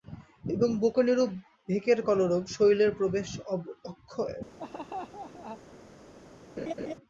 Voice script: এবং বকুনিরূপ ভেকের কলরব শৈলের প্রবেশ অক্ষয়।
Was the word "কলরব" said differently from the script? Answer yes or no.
no